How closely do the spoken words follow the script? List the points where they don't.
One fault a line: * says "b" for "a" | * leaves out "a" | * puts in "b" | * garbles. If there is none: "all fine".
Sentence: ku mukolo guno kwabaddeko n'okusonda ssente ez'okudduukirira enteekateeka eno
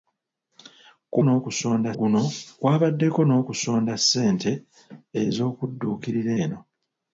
* says "n'okusonda" for "mukolo"
* leaves out "enteekateeka"